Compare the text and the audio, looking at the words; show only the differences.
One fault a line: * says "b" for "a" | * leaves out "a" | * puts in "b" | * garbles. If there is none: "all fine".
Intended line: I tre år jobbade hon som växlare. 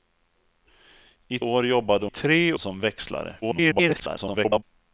* leaves out "tre"
* says "tre" for "hon"
* garbles